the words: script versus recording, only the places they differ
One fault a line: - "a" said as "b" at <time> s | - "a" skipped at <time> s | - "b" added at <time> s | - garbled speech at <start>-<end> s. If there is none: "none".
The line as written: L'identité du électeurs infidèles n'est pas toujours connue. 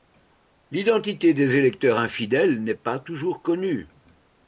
- "du" said as "des" at 1.4 s